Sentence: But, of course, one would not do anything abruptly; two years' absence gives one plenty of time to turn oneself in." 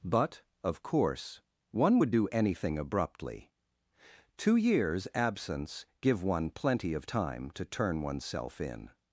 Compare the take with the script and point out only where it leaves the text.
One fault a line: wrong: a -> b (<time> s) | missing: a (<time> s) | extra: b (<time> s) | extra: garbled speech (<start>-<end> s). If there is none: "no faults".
missing: not (2.1 s)
wrong: gives -> give (6.0 s)